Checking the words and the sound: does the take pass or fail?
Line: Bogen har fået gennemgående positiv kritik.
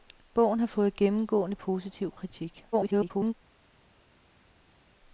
fail